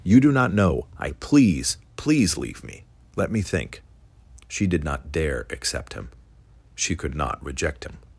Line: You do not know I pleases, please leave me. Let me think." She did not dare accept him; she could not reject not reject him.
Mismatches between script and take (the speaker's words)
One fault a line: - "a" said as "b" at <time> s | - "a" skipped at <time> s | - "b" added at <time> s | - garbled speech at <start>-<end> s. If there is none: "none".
- "pleases" said as "please" at 1.2 s
- "not reject" skipped at 7.8 s